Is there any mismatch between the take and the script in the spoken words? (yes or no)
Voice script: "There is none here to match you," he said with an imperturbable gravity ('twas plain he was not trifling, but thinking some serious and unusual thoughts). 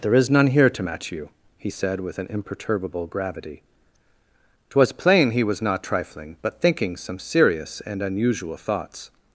no